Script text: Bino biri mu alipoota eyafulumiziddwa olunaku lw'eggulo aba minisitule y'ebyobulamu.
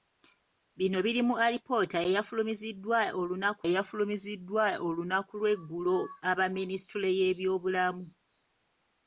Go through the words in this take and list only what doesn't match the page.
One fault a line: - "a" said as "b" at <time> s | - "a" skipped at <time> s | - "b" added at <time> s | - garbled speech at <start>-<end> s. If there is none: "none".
- "eyafulumiziddwa olunaku" added at 3.7 s